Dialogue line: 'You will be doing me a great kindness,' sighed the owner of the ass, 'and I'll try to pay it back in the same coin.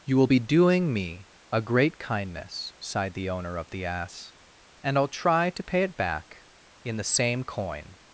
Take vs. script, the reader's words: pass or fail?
pass